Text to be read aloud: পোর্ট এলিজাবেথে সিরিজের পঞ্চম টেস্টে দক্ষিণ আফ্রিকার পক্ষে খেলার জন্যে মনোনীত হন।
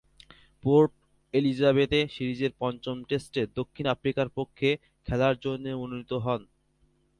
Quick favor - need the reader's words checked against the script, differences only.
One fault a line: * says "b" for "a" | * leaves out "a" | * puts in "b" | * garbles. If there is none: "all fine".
all fine